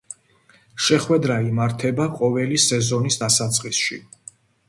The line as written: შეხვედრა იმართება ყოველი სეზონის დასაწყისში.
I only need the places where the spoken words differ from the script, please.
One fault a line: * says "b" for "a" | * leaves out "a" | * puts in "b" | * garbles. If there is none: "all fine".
all fine